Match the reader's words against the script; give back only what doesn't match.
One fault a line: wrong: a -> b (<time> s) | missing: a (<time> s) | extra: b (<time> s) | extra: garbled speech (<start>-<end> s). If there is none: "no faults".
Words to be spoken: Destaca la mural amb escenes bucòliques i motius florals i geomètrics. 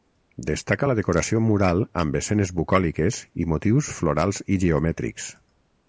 extra: decoració (1.0 s)